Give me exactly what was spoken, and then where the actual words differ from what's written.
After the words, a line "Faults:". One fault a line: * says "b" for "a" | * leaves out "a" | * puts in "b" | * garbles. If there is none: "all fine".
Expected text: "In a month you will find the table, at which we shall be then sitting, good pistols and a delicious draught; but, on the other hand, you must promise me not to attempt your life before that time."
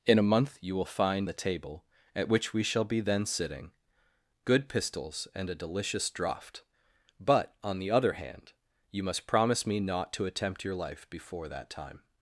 "In a month you will find the table, at which we shall be then sitting, good pistols and a delicious draught; but, on the other hand, you must promise me not to attempt your life before that time."
Faults:
all fine